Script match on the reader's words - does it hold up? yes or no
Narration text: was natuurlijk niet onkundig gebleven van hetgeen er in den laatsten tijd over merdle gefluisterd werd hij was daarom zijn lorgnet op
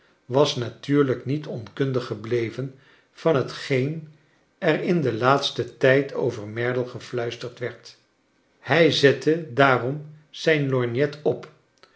no